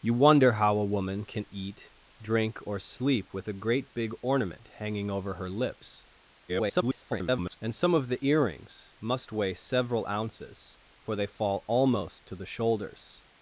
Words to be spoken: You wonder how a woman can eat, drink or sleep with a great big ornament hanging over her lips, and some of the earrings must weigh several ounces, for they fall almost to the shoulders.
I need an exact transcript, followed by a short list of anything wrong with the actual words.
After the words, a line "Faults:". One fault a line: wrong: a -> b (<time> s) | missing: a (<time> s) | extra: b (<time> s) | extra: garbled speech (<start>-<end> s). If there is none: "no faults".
You wonder how a woman can eat, drink or sleep with a great big ornament hanging over her lips, [garbled] and some of the earrings must weigh several ounces, for they fall almost to the shoulders.
Faults:
extra: garbled speech (6.5-7.6 s)